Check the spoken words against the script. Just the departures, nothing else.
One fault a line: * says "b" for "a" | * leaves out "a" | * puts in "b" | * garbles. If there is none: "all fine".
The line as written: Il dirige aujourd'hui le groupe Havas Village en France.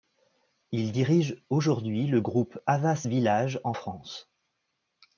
all fine